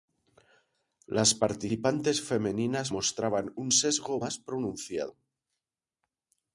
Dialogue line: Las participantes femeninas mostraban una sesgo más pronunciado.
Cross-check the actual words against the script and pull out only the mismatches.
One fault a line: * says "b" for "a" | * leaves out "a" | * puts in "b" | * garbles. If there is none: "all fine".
* says "un" for "una"